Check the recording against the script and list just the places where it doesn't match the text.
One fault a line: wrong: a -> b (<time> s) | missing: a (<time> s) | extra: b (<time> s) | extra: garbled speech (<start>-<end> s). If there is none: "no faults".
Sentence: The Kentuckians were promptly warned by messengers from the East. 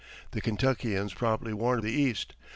missing: were (1.2 s)
missing: by messengers from (1.8 s)